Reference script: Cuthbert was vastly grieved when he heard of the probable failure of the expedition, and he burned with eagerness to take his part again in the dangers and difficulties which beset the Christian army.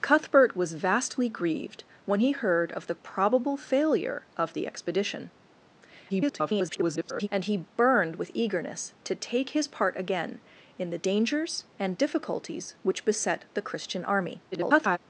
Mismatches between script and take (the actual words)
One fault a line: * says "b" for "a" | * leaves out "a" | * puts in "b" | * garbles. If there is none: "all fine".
* garbles
* garbles